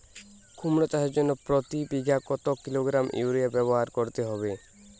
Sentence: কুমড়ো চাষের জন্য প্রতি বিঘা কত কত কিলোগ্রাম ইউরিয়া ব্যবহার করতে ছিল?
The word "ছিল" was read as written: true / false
false